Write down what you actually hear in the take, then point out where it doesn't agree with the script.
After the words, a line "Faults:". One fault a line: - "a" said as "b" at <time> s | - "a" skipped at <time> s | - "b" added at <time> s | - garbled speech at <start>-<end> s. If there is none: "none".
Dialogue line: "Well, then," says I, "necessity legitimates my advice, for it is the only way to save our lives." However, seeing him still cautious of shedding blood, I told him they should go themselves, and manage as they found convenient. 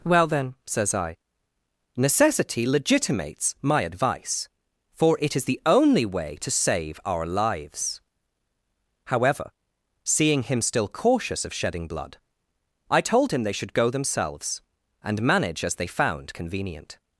"Well, then," says I, "necessity legitimates my advice, for it is the only way to save our lives." However, seeing him still cautious of shedding blood, I told him they should go themselves, and manage as they found convenient.
Faults:
none